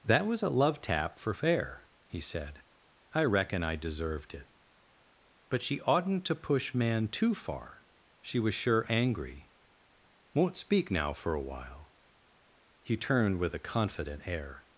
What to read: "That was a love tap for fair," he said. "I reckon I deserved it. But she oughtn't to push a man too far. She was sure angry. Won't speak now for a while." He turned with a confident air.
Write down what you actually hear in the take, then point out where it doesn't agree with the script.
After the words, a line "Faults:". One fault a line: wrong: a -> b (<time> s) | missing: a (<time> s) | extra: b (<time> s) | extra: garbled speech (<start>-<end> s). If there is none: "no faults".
"That was a love tap for fair," he said. "I reckon I deserved it. But she oughtn't to push man too far. She was sure angry. Won't speak now for a while." He turned with a confident air.
Faults:
missing: a (6.7 s)